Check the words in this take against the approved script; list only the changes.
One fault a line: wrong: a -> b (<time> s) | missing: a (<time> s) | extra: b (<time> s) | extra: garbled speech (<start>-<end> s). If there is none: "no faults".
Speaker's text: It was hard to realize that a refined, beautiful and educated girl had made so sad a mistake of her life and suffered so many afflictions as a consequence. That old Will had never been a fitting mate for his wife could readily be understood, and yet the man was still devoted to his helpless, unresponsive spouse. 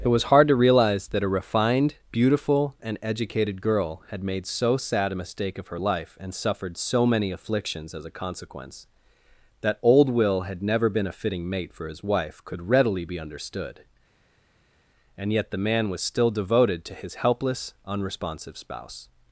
no faults